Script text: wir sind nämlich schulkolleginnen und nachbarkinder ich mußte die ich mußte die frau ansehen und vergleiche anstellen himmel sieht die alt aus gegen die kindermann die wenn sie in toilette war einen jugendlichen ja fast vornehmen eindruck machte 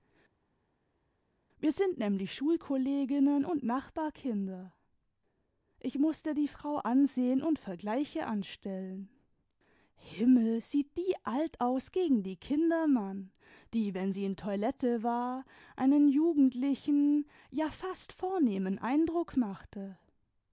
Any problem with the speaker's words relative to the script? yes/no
yes